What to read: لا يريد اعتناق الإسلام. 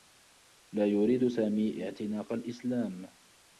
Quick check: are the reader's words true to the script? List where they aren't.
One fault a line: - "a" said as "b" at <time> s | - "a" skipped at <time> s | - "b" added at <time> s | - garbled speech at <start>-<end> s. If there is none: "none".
- "سامي" added at 1.2 s